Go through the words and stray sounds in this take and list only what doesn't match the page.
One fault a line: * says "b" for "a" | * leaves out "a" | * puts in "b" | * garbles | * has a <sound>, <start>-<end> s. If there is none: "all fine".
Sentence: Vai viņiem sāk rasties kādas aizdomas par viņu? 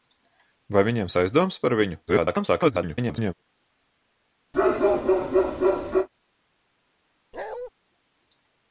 * leaves out "sāk rasties kādas"
* garbles
* has a bark, 4.5-6.1 s
* has a bark, 7.3-7.7 s